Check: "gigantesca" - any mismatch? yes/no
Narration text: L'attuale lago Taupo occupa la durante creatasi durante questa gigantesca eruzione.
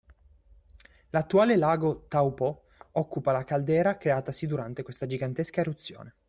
no